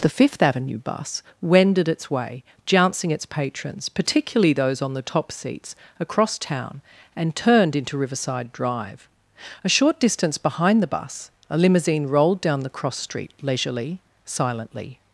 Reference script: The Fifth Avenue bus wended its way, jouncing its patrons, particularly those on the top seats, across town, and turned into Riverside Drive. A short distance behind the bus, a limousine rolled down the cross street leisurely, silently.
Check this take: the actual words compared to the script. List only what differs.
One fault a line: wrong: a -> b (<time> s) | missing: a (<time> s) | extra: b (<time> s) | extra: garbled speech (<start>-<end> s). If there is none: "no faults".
no faults